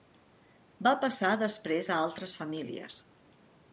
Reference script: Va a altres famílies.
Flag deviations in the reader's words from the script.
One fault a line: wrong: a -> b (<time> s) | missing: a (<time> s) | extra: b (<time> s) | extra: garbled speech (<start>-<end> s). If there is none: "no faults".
extra: passar després (1.0 s)